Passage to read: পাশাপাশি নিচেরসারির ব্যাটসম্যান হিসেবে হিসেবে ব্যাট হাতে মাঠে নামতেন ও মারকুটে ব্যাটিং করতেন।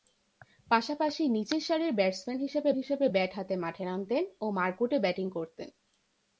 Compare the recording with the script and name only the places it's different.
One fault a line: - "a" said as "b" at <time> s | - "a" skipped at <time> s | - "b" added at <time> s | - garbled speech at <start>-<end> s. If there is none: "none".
none